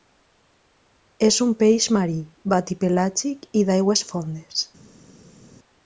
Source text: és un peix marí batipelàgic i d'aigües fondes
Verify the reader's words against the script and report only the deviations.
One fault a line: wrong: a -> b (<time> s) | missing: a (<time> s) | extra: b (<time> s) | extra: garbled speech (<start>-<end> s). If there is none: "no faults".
no faults